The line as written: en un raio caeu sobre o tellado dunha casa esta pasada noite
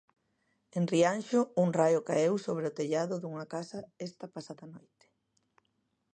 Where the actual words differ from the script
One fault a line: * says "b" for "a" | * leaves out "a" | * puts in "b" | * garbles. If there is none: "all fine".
* puts in "rianxo"